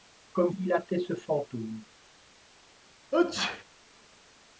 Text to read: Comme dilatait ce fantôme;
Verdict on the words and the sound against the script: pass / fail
fail